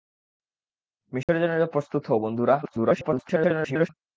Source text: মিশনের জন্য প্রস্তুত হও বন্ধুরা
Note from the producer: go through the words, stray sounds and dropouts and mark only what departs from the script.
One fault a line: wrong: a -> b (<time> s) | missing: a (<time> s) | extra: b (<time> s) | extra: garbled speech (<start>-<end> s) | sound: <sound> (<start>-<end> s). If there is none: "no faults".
sound: dropout (1.2-1.3 s)
extra: garbled speech (2.6-3.9 s)